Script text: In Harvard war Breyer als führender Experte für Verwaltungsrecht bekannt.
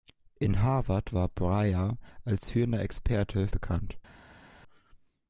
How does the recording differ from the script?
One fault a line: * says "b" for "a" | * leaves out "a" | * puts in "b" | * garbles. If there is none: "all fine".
* leaves out "für Verwaltungsrecht"